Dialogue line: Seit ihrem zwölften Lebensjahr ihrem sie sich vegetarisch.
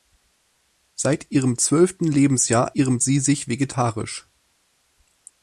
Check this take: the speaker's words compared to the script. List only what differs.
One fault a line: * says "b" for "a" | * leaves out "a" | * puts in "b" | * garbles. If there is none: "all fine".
all fine